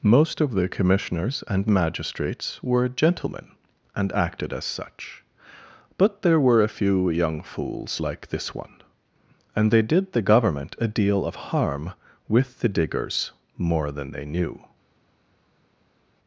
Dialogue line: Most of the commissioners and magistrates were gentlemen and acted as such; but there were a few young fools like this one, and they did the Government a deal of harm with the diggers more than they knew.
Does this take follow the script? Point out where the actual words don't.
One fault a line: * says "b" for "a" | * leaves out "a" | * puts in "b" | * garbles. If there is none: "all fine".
all fine